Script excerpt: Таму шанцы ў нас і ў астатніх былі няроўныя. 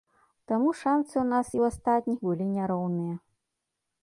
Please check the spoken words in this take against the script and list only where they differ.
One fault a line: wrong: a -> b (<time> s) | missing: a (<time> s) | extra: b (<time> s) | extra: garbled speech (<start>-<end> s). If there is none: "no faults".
no faults